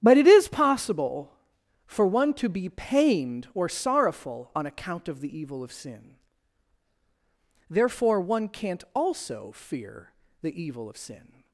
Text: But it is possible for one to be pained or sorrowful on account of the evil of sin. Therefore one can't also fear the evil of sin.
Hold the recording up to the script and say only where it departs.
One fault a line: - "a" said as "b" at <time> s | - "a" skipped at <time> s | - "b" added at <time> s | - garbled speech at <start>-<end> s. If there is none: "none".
none